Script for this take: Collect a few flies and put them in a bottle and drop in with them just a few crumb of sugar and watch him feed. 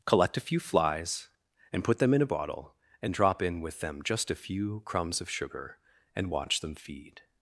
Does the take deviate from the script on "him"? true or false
true